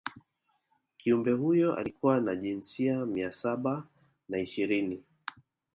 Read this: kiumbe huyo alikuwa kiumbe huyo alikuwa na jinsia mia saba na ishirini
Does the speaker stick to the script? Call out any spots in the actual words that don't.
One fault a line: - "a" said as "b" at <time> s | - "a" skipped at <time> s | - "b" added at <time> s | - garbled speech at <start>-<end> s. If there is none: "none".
- "kiumbe huyo alikuwa" skipped at 2.2 s